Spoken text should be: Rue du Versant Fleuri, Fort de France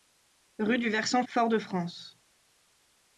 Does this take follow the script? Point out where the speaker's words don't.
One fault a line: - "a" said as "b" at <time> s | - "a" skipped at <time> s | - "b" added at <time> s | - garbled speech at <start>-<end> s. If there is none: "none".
- "Fleuri" skipped at 1.2 s